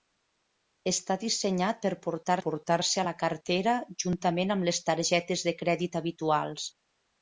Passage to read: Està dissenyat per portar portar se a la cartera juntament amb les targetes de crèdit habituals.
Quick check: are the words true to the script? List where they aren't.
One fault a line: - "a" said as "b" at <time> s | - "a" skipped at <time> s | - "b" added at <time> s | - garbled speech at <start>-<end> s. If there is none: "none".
none